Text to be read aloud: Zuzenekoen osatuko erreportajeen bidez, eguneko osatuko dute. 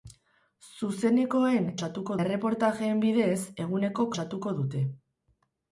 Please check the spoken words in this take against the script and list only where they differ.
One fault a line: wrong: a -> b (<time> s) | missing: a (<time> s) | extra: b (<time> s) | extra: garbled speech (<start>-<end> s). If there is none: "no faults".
no faults